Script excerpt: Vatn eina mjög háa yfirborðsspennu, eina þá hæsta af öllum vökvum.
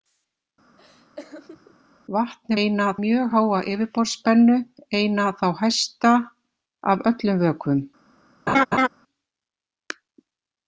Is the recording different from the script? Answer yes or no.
no